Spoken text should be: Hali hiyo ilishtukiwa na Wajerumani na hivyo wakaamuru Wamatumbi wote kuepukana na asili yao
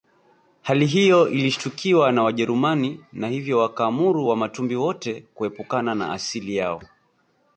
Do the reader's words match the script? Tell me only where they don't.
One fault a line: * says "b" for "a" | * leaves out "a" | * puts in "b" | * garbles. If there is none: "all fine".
all fine